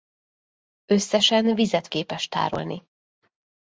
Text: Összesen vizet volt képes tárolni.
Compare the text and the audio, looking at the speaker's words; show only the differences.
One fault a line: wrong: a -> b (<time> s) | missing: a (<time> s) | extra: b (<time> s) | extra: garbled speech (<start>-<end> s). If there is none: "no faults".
missing: volt (1.9 s)